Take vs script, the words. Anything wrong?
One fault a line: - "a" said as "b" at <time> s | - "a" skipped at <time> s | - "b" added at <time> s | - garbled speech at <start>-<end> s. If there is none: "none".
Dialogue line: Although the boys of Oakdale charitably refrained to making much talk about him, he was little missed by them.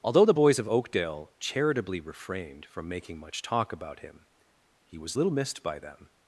- "to" said as "from" at 2.7 s